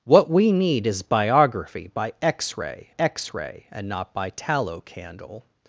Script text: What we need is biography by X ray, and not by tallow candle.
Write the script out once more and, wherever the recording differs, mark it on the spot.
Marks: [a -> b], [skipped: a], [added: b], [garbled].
What we need is biography by X ray, [added: X ray] and not by tallow candle.